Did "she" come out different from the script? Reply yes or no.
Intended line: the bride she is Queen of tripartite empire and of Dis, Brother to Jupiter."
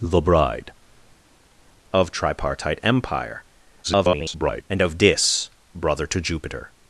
yes